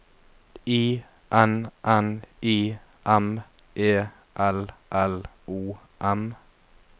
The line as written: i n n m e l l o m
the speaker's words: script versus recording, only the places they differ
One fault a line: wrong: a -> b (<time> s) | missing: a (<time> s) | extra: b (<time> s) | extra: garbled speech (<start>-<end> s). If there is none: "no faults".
extra: i (2.4 s)